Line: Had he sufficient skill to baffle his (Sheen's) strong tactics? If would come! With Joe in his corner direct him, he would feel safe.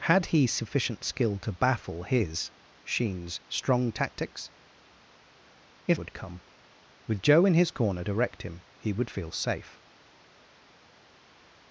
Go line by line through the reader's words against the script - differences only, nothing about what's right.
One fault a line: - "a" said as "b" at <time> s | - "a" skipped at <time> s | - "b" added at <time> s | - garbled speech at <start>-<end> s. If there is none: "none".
none